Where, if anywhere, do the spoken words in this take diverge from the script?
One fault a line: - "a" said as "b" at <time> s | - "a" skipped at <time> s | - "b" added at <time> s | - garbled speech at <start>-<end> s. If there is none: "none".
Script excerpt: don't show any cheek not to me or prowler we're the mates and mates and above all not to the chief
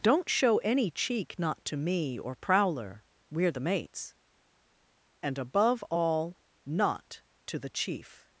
- "mates and" skipped at 5.4 s